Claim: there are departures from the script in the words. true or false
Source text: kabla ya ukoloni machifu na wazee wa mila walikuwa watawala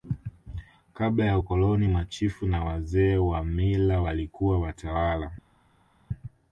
false